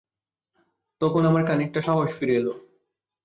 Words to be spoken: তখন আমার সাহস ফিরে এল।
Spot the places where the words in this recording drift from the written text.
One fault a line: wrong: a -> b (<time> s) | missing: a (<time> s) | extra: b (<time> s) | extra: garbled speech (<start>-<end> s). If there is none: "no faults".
extra: খানিকটা (1.5 s)